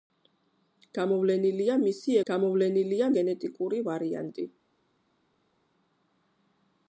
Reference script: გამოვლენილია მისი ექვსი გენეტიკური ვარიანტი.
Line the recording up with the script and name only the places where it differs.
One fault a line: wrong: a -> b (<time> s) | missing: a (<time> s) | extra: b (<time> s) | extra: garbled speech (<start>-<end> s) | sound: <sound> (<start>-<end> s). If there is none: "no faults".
wrong: ექვსი -> გამოვლენილია (2.3 s)